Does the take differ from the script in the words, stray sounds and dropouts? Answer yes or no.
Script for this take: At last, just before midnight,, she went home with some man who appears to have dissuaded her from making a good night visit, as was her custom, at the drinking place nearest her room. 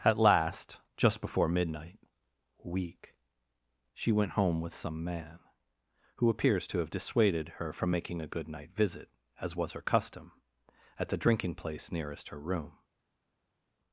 yes